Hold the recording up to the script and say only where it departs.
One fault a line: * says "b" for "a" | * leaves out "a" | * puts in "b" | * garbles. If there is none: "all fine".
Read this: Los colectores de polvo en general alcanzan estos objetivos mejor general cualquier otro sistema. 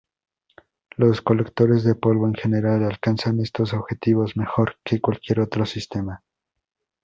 * says "que" for "general"